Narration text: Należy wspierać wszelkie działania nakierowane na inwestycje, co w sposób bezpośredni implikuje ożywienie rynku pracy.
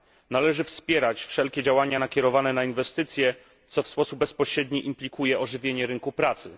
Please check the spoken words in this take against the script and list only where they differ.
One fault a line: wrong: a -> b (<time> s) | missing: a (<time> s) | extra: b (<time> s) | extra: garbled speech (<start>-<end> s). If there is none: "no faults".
no faults